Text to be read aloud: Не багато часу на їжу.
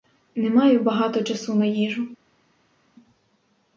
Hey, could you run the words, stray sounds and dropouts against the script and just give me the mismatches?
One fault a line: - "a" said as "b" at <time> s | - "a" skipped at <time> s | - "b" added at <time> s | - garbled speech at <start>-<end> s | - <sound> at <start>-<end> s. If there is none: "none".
- "маю" added at 0.5 s